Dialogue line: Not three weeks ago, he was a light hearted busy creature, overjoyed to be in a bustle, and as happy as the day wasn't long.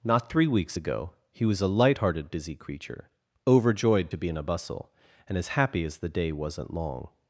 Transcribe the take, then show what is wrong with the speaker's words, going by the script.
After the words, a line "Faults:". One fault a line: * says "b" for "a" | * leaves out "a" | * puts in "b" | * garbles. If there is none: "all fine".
Not three weeks ago, he was a light hearted busy creature, overjoyed to be in a bustle, and as happy as the day wasn't long.
Faults:
all fine